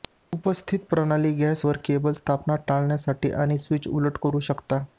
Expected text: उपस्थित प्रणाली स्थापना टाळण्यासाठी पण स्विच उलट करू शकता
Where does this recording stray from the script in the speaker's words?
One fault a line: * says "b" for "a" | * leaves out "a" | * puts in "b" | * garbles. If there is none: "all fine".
* puts in "गॅस वर केबल"
* says "आणि" for "पण"